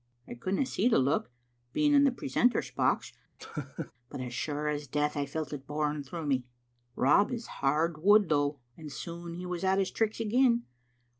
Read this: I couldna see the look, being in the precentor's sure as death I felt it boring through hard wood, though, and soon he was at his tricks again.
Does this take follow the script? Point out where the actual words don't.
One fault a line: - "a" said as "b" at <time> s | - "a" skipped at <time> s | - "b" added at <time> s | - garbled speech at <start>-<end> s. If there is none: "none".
- "box but as" added at 2.7 s
- "me Rob is" added at 6.3 s